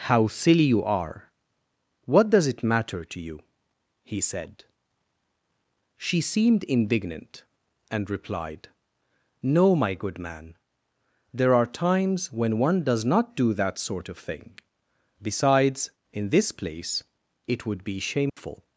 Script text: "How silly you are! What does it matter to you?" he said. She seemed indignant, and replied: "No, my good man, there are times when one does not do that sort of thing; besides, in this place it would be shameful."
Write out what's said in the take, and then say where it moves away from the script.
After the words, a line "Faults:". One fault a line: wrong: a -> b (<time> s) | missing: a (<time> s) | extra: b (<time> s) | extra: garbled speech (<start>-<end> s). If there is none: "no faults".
"How silly you are! What does it matter to you?" he said. She seemed indignant, and replied: "No, my good man, there are times when one does not do that sort of thing; besides, in this place it would be shameful."
Faults:
no faults